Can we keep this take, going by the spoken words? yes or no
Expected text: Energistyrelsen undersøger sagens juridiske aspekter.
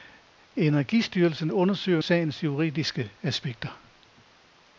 yes